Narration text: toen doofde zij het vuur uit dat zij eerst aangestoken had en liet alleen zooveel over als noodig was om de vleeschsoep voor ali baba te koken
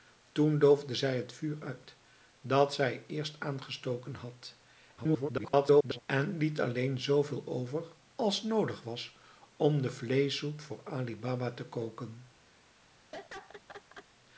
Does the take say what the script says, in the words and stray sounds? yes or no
no